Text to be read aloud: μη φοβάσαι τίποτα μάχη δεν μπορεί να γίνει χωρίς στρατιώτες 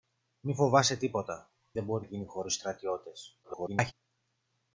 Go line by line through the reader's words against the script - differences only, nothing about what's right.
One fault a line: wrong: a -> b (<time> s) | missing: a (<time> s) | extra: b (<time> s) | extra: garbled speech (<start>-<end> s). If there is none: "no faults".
missing: μάχη (1.5 s)
missing: να (2.1 s)
extra: garbled speech (3.4-3.9 s)